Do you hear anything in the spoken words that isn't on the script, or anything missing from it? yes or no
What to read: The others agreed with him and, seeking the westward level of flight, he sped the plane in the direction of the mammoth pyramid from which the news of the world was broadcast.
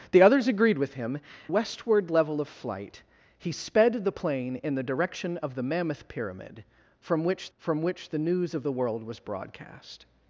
yes